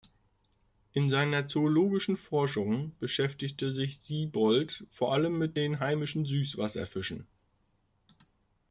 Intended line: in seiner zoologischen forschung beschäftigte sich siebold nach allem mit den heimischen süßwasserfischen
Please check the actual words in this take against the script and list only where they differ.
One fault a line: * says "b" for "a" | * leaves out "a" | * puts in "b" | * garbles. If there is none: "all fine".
* says "vor" for "nach"